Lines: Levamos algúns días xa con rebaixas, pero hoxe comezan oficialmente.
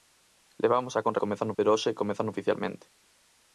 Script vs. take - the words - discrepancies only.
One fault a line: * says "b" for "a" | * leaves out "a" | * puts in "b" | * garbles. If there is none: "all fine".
* leaves out "algúns días"
* says "comezan" for "rebaixas"